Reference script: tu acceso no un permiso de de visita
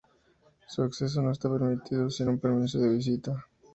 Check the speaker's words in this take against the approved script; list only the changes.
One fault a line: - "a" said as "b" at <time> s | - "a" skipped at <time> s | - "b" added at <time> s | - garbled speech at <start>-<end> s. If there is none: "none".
- "tu" said as "su" at 0.7 s
- "está permitido sin" added at 1.3 s
- "de" skipped at 2.9 s